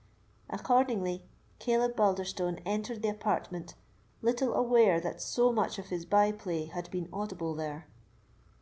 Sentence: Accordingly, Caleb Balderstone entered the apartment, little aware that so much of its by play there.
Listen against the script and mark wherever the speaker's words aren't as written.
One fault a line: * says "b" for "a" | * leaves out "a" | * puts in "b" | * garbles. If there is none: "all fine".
* says "his" for "its"
* puts in "had been audible"